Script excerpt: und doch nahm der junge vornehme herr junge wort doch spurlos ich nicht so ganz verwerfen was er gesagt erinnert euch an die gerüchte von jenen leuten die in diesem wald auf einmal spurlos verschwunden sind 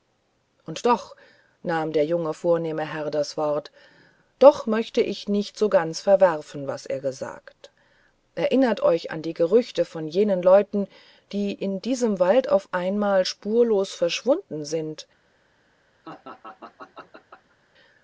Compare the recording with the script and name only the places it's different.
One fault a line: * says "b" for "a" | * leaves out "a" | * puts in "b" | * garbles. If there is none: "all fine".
* says "das" for "junge"
* says "möchte" for "spurlos"